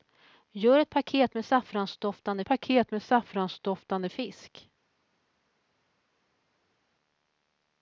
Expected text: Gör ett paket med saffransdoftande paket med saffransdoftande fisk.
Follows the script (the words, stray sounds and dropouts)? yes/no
yes